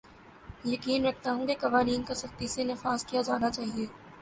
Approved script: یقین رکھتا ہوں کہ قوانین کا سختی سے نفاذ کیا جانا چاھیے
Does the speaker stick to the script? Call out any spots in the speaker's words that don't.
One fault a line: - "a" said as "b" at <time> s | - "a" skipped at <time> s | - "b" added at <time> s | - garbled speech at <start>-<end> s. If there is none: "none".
none